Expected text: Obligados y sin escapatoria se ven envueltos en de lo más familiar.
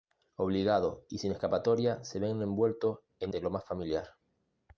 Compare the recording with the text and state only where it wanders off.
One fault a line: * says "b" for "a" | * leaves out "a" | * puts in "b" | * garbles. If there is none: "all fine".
all fine